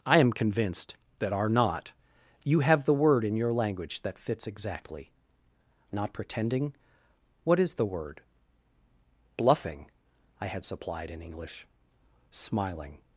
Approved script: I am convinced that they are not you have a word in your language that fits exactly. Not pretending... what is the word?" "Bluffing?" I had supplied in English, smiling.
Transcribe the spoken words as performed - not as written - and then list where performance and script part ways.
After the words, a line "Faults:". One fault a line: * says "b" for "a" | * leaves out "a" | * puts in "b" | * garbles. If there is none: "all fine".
I am convinced that are not you have the word in your language that fits exactly. Not pretending... what is the word?" "Bluffing?" I had supplied in English, smiling.
Faults:
* leaves out "they"
* says "the" for "a"